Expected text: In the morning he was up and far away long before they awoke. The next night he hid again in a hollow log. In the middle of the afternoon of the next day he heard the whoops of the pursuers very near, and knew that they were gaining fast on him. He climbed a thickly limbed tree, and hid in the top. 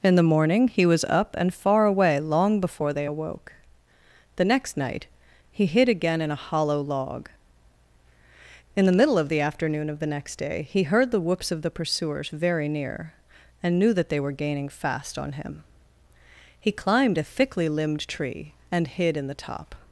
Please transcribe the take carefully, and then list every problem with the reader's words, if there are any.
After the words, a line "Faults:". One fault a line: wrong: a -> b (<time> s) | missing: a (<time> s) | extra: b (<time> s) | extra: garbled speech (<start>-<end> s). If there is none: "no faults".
In the morning he was up and far away long before they awoke. The next night he hid again in a hollow log. In the middle of the afternoon of the next day he heard the whoops of the pursuers very near, and knew that they were gaining fast on him. He climbed a thickly limbed tree, and hid in the top.
Faults:
no faults